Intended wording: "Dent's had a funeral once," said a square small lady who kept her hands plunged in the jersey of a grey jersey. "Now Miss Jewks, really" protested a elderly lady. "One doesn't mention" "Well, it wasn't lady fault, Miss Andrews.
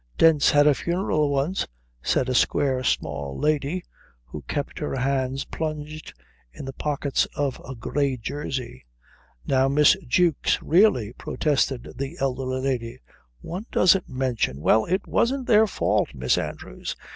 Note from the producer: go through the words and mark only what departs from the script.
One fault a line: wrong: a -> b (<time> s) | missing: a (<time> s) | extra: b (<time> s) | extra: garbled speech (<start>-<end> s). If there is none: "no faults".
wrong: jersey -> pockets (6.7 s)
wrong: a -> the (12.0 s)
wrong: lady -> their (15.5 s)